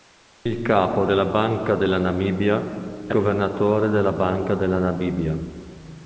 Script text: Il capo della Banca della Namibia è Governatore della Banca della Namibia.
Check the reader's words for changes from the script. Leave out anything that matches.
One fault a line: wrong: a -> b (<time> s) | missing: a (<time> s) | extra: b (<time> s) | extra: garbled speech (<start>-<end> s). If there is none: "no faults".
no faults